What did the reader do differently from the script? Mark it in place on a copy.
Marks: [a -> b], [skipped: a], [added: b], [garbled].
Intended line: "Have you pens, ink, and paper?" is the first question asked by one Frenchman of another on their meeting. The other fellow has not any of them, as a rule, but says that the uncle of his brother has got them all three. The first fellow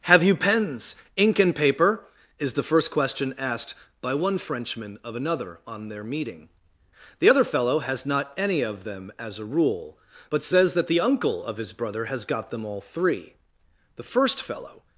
"Have you pens, ink, and paper?" is the first question asked by one Frenchman of another on their meeting. The other fellow has not any of them, as a rule, but says that the uncle of his brother has got them all three. The first fellow